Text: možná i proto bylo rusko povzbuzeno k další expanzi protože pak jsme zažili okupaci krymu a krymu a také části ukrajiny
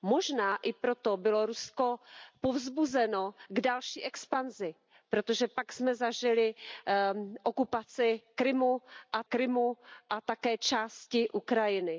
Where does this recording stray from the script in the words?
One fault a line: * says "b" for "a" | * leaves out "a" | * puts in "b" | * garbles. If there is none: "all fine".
all fine